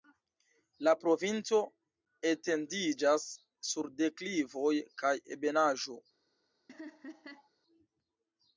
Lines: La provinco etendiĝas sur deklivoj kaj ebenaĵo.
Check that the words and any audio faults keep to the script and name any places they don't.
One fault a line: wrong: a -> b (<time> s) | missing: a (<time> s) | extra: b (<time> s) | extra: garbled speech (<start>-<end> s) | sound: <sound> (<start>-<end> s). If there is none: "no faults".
sound: laugh (6.7-7.5 s)